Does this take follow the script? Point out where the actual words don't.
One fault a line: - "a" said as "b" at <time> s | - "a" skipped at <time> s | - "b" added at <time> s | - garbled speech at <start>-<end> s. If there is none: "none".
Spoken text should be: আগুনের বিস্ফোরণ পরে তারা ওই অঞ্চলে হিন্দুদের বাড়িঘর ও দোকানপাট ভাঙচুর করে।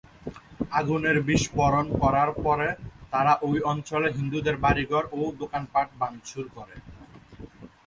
- "করার" added at 2.0 s